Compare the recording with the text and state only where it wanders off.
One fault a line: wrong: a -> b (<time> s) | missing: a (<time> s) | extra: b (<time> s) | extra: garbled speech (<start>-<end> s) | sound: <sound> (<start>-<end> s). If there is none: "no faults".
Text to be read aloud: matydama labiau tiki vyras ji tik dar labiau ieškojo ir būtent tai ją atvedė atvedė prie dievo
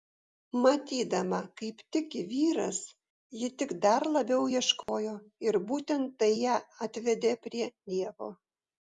wrong: labiau -> kaip (1.6 s)
sound: dropout (4.8-4.9 s)
missing: atvedė (7.3 s)